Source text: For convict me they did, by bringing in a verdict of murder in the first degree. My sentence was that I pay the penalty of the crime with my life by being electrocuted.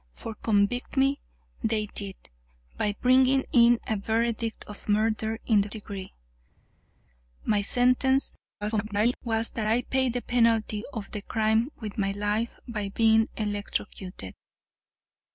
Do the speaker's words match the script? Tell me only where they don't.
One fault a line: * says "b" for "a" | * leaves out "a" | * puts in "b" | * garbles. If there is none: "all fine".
* leaves out "first"
* garbles